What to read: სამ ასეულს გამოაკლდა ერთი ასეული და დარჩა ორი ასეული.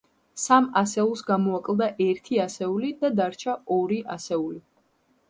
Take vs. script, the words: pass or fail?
pass